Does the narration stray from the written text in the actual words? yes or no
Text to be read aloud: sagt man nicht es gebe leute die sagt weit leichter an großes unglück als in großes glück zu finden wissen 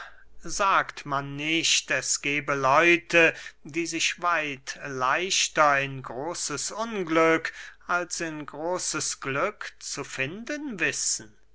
yes